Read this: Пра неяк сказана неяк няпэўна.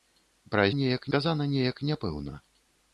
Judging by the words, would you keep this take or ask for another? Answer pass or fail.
pass